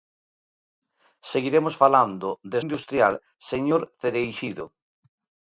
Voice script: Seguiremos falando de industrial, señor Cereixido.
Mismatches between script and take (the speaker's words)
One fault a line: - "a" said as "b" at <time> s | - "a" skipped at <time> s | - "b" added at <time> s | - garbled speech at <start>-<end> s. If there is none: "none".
none